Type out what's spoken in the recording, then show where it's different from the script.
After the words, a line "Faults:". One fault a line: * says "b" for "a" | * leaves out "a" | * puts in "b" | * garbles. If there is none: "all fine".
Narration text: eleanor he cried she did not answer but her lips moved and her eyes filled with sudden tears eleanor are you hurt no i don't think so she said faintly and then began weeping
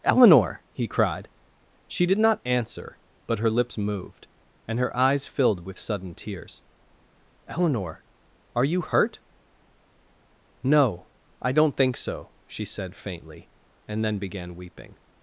eleanor he cried she did not answer but her lips moved and her eyes filled with sudden tears eleanor are you hurt no i don't think so she said faintly and then began weeping
Faults:
all fine